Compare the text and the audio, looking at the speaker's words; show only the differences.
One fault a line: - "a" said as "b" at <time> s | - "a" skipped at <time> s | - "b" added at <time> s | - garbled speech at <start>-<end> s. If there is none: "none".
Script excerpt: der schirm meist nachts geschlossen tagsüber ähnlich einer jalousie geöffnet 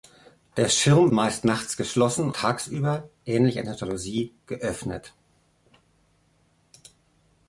none